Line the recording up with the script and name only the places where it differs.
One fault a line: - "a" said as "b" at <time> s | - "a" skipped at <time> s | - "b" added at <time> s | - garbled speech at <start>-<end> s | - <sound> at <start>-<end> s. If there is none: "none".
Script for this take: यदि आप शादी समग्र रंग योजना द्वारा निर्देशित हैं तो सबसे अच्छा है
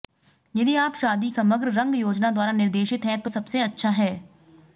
none